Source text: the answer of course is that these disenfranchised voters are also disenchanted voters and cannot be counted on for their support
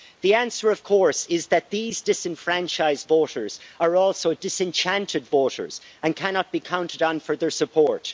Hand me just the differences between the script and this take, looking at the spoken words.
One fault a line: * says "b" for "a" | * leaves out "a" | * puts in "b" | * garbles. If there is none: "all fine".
all fine